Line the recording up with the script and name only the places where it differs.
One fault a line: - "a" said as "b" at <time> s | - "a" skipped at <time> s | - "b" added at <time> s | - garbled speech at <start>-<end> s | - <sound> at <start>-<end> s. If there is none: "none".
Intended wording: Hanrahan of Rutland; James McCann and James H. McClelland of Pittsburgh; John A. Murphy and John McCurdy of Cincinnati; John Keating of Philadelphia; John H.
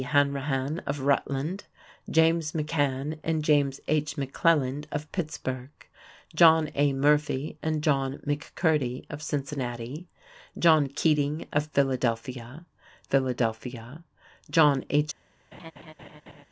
- "Philadelphia" added at 13.0 s
- laugh at 15.5-16.4 s